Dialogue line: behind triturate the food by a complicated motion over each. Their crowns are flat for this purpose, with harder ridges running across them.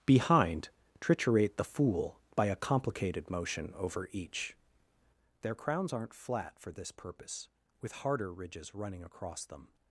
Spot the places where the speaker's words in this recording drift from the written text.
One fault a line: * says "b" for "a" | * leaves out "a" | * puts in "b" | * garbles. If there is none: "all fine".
* says "fool" for "food"
* says "aren't" for "are"